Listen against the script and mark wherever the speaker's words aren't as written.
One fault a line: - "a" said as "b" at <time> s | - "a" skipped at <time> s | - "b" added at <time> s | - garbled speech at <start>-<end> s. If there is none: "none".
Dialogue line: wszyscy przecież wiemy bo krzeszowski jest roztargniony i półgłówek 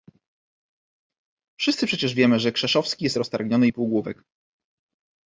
- "bo" said as "że" at 2.4 s